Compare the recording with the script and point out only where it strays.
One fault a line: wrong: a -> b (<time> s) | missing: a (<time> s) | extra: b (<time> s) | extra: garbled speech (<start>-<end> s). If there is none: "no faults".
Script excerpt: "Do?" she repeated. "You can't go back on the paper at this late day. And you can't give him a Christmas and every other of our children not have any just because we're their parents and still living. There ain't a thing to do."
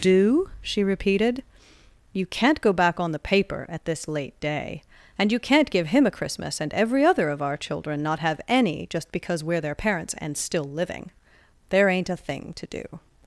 no faults